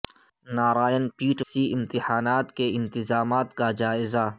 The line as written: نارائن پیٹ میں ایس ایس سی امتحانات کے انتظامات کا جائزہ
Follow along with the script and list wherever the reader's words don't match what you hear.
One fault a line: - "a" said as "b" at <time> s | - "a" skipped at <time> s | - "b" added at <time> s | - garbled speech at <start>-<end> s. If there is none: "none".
- "میں ایس ایس" skipped at 1.4 s